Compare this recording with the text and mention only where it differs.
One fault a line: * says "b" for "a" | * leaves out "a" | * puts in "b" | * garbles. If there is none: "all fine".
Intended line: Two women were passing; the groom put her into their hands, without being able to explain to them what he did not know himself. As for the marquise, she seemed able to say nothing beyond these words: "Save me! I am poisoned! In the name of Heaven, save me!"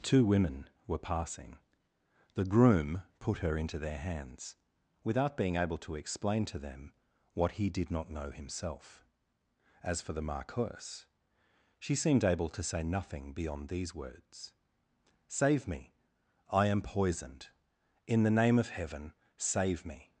all fine